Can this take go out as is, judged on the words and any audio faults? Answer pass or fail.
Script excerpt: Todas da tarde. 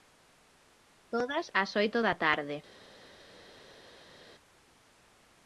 fail